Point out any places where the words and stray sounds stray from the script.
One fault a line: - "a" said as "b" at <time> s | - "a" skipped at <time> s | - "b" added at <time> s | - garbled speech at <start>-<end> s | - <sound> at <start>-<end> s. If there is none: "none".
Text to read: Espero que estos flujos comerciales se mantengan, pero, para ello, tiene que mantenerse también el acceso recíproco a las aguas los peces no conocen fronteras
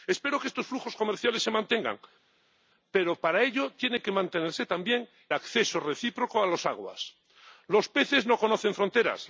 - "el" skipped at 5.1 s